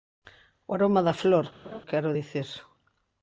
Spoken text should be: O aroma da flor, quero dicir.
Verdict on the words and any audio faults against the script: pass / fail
fail